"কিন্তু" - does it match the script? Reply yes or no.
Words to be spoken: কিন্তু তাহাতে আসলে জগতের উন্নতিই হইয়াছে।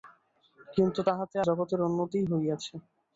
yes